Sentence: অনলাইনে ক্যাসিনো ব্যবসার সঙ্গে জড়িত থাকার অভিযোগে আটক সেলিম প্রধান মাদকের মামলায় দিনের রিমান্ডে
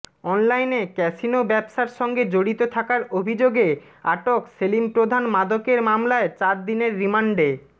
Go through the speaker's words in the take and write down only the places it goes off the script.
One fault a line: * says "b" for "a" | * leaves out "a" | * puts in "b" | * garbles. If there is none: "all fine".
* puts in "চার"